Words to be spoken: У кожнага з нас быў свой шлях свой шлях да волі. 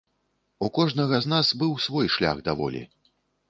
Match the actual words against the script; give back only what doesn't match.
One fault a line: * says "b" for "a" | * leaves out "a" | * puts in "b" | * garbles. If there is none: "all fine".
* leaves out "свой шлях"